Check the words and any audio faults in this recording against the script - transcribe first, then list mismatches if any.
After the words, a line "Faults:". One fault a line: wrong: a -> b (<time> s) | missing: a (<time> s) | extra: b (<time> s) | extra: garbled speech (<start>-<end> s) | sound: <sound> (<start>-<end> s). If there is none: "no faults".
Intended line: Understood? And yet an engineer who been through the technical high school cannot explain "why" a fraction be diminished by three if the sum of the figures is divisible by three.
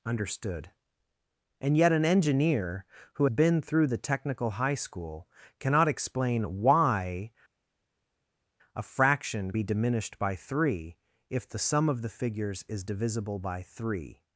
Understood? And yet an engineer who been through the technical high school cannot explain "why" a fraction be diminished by three if the sum of the figures is divisible by three.
Faults:
no faults